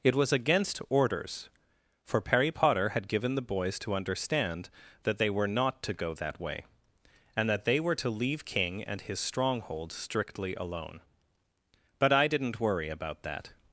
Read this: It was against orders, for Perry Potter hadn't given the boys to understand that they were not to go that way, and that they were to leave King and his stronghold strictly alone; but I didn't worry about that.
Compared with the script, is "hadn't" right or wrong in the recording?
wrong